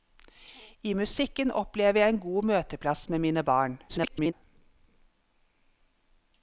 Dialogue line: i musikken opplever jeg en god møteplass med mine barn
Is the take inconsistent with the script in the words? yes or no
yes